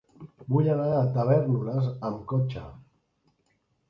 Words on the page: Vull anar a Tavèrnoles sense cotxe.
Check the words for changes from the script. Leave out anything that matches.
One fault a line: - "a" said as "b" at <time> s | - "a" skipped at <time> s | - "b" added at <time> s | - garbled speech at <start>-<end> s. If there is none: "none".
- "sense" said as "amb" at 2.1 s